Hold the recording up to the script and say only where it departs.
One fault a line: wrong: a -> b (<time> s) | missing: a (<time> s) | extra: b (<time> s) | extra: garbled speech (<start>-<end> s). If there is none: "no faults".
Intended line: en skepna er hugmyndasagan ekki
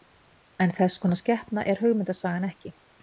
extra: þess konar (0.8 s)